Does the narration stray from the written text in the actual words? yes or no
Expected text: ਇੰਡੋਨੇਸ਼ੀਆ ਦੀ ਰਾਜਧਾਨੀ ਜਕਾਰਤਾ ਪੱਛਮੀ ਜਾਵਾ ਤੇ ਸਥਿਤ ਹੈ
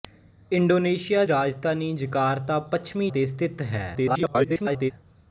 yes